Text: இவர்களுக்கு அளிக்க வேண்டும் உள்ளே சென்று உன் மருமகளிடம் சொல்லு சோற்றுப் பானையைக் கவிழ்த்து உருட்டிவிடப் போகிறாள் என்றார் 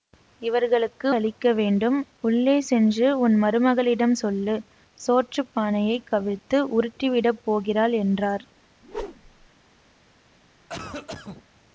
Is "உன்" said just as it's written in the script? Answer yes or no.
yes